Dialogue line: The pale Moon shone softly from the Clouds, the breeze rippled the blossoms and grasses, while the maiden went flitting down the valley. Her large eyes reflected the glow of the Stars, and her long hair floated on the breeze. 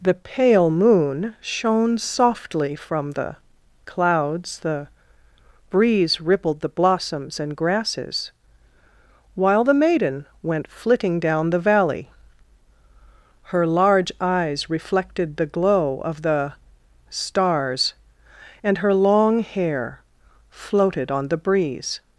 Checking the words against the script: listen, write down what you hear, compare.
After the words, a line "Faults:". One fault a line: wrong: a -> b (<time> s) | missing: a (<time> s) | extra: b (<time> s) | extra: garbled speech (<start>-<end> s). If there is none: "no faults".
The pale Moon shone softly from the Clouds, the breeze rippled the blossoms and grasses, while the maiden went flitting down the valley. Her large eyes reflected the glow of the Stars, and her long hair floated on the breeze.
Faults:
no faults